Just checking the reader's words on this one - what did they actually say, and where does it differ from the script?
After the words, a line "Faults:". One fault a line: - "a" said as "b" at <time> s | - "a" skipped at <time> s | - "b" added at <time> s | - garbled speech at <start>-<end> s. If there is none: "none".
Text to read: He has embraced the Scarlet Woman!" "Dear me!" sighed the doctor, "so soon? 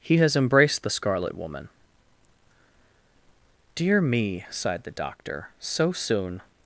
He has embraced the Scarlet Woman!" "Dear me!" sighed the doctor, "so soon?
Faults:
none